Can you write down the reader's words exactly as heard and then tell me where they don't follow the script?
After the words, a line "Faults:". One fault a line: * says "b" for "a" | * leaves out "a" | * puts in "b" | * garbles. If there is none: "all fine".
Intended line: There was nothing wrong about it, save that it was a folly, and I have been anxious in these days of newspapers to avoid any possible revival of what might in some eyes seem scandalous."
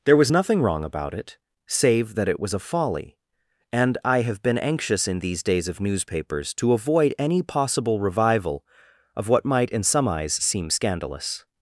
There was nothing wrong about it, save that it was a folly, and I have been anxious in these days of newspapers to avoid any possible revival of what might in some eyes seem scandalous."
Faults:
all fine